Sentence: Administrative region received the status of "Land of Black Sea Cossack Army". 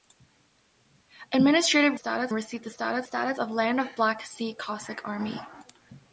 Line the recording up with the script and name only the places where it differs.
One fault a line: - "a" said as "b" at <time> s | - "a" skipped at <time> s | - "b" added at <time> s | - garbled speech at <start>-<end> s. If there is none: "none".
- "region" said as "status" at 1.9 s
- "status" added at 3.0 s